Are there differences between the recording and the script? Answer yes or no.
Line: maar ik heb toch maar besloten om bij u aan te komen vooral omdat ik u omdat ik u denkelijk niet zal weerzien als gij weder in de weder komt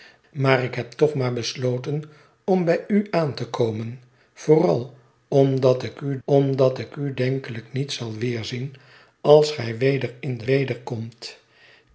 no